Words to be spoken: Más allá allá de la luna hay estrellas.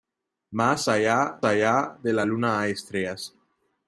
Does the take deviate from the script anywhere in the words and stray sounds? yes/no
no